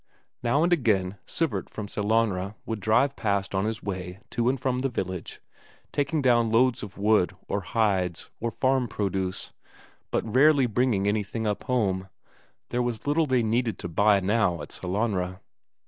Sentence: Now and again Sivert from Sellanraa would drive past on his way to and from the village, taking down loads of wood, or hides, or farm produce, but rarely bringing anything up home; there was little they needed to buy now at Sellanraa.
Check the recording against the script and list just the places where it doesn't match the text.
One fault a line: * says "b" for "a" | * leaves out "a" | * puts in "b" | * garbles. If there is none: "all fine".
all fine